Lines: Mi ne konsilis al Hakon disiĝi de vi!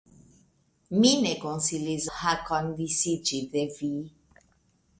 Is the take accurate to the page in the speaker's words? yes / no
no